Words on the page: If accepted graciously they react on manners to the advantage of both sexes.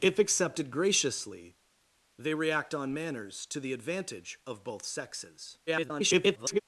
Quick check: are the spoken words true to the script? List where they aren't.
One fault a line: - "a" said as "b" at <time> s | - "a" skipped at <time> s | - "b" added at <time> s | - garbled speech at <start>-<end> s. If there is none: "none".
- garbled speech at 5.7-6.6 s